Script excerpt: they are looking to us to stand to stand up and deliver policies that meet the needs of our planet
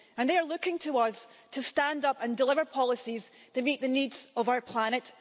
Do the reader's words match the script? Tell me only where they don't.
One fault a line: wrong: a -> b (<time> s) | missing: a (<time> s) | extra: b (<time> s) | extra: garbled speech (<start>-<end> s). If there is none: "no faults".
missing: to stand (2.0 s)